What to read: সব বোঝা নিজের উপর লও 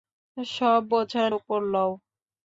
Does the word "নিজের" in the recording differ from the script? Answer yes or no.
yes